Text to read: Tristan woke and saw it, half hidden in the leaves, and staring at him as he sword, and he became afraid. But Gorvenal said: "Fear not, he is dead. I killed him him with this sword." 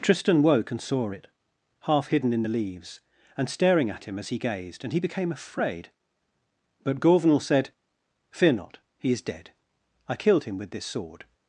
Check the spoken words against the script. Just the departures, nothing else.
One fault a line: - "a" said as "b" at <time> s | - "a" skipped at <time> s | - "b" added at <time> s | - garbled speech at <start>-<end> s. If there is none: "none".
- "sword" said as "gazed" at 4.4 s
- "him" skipped at 10.6 s